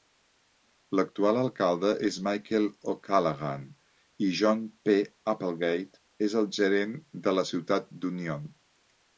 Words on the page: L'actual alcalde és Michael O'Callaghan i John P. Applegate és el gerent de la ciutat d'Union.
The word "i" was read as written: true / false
true